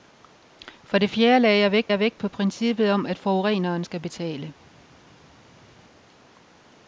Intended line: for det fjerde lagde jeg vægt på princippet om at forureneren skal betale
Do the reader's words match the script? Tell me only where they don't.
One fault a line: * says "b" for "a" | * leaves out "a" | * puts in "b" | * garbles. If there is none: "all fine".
* puts in "jeg vægt"